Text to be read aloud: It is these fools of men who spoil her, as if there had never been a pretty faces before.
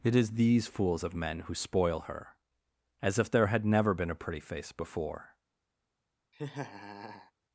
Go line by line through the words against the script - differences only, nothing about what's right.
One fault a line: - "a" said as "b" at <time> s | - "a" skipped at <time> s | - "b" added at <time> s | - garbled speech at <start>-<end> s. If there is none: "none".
- "faces" said as "face" at 4.4 s